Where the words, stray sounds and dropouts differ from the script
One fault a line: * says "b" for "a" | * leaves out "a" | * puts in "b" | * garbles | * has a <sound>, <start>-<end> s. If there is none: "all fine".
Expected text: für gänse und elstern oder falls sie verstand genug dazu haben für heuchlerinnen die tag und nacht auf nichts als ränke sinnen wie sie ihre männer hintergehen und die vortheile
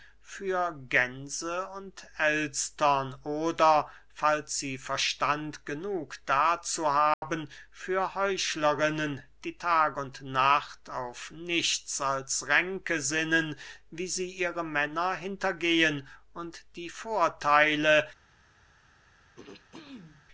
* has a dropout, 7.1-7.2 s
* has a throat clearing, 19.4-20.3 s